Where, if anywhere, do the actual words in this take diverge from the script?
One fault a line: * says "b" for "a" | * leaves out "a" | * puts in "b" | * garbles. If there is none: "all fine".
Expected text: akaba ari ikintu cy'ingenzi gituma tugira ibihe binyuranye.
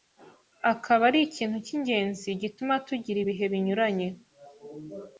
all fine